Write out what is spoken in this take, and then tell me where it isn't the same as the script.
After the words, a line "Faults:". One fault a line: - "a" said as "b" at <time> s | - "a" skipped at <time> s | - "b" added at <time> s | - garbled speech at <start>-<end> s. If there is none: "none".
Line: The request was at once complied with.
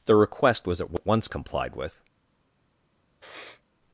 The request was at once complied with.
Faults:
none